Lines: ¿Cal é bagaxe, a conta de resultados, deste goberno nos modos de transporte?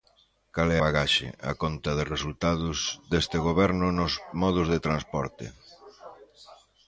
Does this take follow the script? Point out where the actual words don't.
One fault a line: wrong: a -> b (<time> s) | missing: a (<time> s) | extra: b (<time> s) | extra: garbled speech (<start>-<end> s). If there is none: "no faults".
no faults